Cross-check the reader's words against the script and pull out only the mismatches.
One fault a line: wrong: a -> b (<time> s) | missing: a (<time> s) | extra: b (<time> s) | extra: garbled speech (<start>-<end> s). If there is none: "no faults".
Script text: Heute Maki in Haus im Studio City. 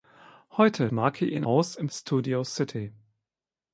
no faults